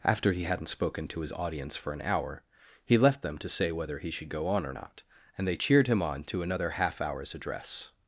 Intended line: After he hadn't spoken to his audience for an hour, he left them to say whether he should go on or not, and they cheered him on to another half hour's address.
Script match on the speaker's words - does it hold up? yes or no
yes